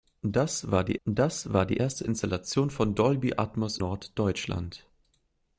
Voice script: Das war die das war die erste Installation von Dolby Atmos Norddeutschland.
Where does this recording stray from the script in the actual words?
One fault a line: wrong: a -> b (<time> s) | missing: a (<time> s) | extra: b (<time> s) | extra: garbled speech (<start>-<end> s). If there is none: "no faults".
no faults